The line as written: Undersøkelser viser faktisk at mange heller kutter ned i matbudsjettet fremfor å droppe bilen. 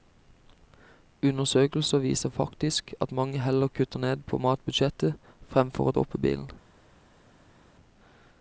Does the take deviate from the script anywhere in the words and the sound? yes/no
yes